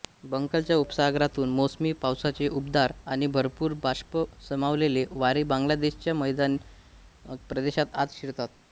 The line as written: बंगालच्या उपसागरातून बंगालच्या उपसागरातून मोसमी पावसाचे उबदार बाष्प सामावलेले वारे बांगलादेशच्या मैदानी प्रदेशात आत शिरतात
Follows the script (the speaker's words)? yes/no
no